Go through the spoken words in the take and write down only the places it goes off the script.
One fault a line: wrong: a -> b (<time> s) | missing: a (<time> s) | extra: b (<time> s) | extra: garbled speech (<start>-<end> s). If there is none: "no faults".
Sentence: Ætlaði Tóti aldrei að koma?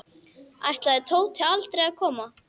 no faults